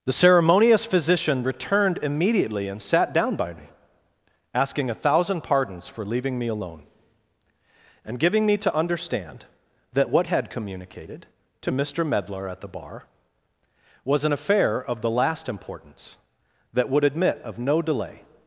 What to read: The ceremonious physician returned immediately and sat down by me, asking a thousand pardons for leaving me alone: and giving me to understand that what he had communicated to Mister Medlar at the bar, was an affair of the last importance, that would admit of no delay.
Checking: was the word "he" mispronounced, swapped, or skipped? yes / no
yes